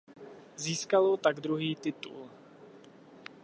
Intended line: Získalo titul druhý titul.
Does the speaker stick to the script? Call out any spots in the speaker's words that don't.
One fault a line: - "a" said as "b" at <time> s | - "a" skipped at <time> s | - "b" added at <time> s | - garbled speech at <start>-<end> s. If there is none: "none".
- "titul" said as "tak" at 1.1 s